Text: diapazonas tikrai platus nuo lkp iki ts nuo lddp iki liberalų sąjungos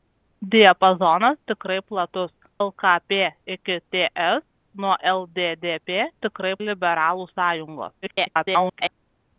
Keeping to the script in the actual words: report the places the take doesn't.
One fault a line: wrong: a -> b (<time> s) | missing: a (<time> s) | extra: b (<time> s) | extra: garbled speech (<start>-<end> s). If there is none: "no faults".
missing: nuo (2.3 s)
wrong: iki -> tikrai (6.2 s)
extra: garbled speech (8.0-8.9 s)